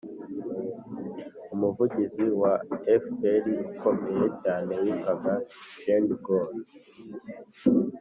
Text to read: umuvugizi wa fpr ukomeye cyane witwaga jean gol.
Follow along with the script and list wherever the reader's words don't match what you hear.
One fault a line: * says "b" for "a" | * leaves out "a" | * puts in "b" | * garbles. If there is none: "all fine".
all fine